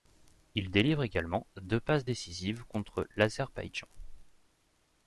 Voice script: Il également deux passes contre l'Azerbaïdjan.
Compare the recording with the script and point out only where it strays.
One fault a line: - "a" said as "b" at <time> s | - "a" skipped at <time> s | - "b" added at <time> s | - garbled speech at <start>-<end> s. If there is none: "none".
- "délivre" added at 0.7 s
- "décisives" added at 2.0 s